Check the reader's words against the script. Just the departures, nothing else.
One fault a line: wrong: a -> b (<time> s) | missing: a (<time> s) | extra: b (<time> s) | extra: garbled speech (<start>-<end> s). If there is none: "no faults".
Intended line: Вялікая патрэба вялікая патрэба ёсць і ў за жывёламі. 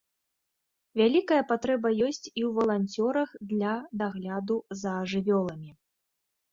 missing: вялікая патрэба (1.9 s)
extra: валанцёрах для дагляду (2.6 s)